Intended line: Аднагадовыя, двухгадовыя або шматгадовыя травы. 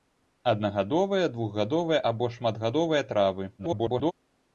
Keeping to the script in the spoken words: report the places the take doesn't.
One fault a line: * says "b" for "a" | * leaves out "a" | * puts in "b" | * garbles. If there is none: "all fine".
* garbles